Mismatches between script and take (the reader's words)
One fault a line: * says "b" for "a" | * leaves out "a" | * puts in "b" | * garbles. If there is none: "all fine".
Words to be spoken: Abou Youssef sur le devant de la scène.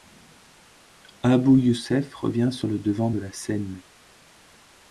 * puts in "revient"